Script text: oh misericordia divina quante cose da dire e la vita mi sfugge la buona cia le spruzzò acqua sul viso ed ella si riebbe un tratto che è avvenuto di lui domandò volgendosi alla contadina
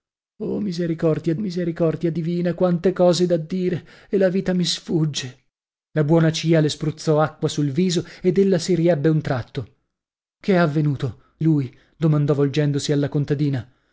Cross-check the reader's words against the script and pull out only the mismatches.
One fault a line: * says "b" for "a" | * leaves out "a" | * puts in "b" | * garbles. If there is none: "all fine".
* puts in "misericordia"
* leaves out "di"